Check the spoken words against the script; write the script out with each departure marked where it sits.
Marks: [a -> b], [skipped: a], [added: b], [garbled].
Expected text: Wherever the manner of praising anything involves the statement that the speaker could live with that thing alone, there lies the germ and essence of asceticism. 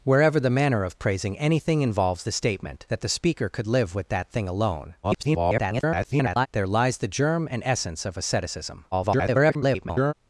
Wherever the manner of praising anything involves the statement that the speaker could live with that thing alone, [garbled] there lies the germ and essence of asceticism. [garbled]